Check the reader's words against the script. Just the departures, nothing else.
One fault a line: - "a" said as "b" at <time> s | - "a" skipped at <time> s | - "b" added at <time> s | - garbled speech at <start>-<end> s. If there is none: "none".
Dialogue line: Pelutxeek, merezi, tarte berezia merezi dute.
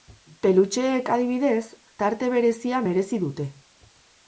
- "merezi" said as "adibidez" at 1.2 s